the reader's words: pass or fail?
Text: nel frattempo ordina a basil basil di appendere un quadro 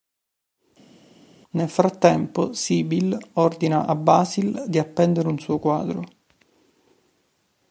fail